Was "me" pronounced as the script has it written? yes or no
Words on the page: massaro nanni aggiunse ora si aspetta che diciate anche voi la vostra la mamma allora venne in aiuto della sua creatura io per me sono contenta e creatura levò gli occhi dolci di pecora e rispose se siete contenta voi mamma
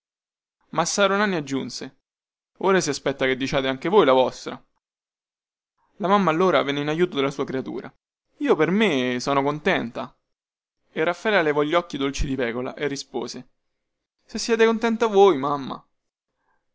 yes